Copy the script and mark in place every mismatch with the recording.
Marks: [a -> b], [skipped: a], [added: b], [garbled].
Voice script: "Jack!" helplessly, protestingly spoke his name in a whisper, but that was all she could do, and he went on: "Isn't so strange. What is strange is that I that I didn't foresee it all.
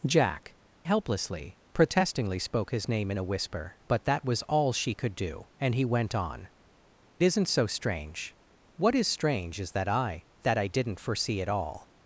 "Jack!" helplessly, protestingly spoke his name in a whisper, but that was all she could do, and he went on: "Isn't so strange. What is strange is that I that I didn't foresee it all.